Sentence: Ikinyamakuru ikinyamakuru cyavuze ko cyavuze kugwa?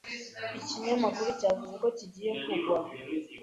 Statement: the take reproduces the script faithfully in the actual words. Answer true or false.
false